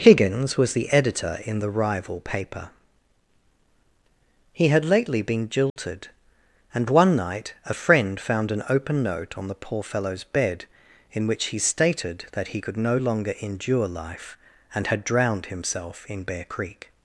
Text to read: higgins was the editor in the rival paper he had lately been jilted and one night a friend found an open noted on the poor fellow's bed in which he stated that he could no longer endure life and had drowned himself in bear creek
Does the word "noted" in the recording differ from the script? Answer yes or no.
yes